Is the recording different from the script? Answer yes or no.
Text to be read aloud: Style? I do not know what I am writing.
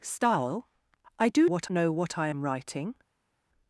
yes